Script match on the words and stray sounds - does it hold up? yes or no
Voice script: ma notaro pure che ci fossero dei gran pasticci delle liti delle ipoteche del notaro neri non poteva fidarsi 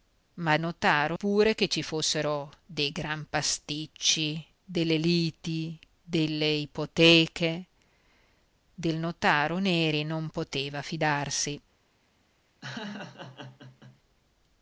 no